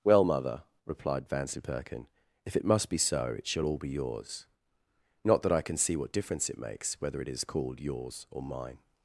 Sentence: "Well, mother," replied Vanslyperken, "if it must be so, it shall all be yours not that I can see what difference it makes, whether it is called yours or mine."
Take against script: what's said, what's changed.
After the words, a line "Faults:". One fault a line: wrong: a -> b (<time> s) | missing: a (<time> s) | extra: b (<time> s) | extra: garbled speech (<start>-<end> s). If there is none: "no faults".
"Well, mother," replied Vanslyperken, "if it must be so, it shall all be yours not that I can see what difference it makes, whether it is called yours or mine."
Faults:
no faults